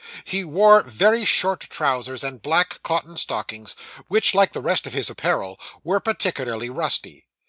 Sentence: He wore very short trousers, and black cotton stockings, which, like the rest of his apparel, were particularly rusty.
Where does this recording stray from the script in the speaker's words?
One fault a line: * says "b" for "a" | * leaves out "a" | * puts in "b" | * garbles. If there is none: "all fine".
all fine